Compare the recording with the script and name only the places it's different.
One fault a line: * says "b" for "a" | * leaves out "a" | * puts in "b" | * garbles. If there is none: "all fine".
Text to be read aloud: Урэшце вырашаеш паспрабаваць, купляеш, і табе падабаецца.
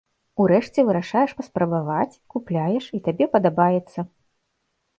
all fine